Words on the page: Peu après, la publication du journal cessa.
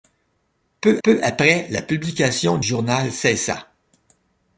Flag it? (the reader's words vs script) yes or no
yes